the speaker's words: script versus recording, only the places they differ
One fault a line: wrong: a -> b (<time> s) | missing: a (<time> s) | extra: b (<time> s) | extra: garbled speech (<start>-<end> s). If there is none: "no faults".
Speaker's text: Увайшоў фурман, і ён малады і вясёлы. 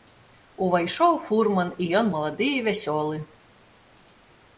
no faults